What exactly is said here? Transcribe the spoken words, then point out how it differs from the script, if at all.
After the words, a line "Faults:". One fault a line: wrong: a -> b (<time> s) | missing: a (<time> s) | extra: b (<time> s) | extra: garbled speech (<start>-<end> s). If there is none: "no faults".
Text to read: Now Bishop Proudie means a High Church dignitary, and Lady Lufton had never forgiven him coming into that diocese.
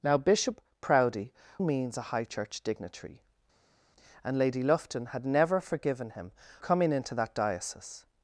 Now Bishop Proudie means a High Church dignitary, and Lady Lufton had never forgiven him coming into that diocese.
Faults:
no faults